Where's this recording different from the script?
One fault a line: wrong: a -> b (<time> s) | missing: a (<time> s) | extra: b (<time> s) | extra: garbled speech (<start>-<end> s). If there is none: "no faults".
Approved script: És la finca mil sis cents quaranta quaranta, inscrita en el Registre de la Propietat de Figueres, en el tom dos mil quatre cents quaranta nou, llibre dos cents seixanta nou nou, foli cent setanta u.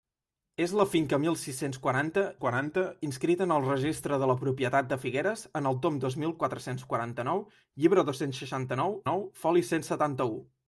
no faults